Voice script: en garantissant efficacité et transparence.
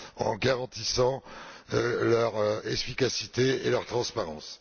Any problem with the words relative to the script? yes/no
yes